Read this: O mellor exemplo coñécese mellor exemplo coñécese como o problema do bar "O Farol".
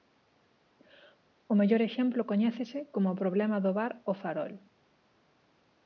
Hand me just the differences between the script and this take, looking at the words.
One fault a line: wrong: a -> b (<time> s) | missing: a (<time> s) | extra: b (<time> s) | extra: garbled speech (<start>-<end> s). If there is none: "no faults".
missing: mellor exemplo coñécese (2.8 s)